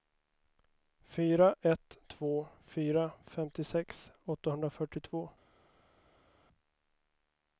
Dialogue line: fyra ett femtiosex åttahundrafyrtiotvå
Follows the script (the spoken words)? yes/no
no